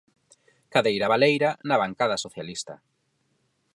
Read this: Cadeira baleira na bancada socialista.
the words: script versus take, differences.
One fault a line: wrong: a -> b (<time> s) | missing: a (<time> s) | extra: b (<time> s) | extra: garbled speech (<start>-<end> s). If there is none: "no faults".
no faults